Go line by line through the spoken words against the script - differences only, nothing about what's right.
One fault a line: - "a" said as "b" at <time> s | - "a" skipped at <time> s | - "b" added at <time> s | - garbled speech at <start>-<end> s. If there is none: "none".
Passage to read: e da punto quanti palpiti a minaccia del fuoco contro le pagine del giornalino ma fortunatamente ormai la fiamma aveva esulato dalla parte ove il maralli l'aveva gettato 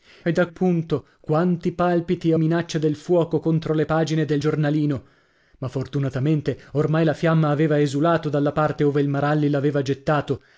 none